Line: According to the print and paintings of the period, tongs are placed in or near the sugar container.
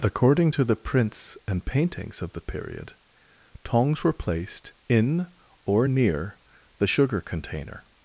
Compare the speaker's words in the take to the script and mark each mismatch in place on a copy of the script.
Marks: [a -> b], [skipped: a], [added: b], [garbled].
According to the [print -> prints] and paintings of the period, tongs [are -> were] placed in or near the sugar container.